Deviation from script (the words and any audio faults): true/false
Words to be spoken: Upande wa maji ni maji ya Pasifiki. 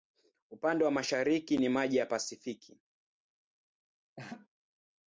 true